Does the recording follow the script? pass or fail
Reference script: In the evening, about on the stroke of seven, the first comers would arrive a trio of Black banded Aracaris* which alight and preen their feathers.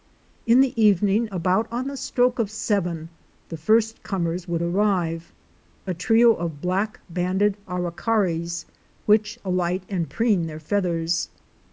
pass